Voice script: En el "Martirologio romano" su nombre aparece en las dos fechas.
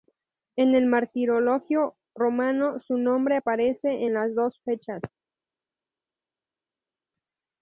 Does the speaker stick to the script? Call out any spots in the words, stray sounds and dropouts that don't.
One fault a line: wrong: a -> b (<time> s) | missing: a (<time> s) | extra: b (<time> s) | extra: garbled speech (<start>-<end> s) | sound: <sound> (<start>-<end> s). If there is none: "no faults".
no faults